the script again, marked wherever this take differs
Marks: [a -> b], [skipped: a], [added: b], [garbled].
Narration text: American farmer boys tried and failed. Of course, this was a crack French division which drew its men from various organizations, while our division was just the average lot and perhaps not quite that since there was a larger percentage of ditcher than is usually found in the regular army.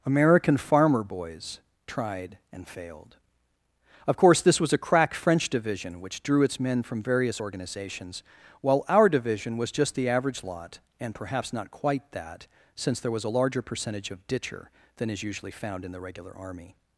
American farmer boys tried and failed. Of course, this was a crack French division which drew its men from various organizations, while our division was just the average lot and perhaps not quite that since there was a larger percentage of ditcher than is usually found in the regular army.